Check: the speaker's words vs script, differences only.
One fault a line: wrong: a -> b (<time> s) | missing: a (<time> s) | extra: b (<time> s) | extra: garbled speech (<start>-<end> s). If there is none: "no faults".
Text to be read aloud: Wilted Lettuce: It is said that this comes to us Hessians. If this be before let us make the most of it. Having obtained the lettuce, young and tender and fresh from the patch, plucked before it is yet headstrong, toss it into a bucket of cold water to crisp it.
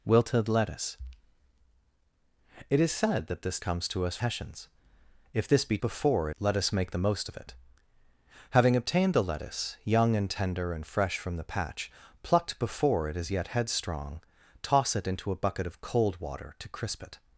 no faults